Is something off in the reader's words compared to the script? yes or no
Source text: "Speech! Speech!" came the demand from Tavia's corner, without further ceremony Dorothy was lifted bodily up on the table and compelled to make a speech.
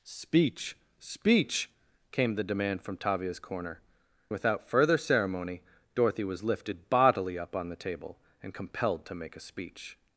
no